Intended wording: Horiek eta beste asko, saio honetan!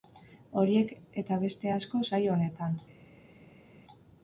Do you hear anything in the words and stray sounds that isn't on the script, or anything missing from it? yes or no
no